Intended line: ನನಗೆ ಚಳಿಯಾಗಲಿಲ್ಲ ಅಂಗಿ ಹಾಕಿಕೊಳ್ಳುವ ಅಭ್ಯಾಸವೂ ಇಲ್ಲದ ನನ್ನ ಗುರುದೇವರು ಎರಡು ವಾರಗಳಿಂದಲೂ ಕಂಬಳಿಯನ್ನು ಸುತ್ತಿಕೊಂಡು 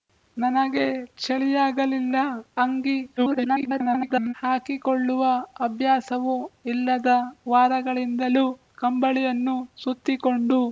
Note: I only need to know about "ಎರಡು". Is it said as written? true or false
false